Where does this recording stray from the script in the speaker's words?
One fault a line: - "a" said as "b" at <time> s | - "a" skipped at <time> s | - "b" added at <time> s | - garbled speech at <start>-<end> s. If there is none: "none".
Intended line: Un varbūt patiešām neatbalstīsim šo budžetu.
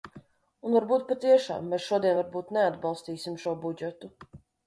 - "mēs šodien varbūt" added at 1.7 s